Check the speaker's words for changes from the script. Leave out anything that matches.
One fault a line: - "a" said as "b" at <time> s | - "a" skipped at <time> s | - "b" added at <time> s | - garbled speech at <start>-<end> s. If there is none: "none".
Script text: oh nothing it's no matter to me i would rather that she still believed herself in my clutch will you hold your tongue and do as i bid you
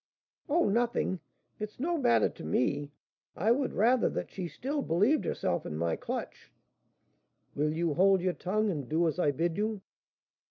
none